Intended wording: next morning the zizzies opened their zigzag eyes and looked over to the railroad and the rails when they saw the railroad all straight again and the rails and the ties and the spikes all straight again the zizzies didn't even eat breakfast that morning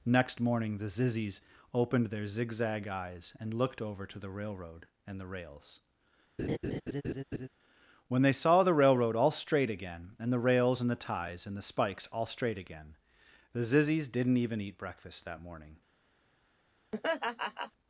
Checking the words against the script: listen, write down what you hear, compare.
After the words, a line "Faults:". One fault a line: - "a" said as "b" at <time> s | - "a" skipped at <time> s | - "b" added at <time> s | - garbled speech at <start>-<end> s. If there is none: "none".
next morning the zizzies opened their zigzag eyes and looked over to the railroad and the rails when they saw the railroad all straight again and the rails and the ties and the spikes all straight again the zizzies didn't even eat breakfast that morning
Faults:
none